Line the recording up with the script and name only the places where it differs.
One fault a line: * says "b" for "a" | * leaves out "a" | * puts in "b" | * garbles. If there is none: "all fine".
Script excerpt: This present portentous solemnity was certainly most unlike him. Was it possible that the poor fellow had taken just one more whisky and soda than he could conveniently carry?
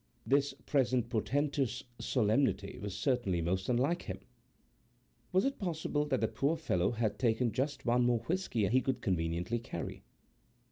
* leaves out "and soda than"